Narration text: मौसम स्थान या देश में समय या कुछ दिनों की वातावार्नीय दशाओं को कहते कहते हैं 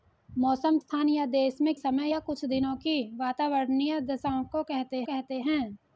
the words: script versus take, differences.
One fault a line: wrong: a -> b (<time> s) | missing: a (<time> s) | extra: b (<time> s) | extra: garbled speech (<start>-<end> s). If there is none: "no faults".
no faults